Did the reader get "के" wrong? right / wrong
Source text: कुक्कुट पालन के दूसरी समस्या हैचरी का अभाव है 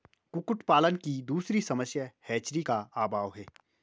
wrong